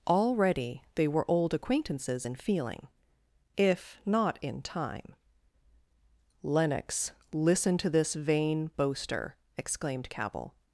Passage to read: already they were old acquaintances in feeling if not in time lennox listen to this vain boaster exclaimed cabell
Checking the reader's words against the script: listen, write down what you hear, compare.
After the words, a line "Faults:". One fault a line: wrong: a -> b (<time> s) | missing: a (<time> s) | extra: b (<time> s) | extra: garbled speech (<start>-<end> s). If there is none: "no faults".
already they were old acquaintances in feeling if not in time lennox listen to this vain boaster exclaimed cabell
Faults:
no faults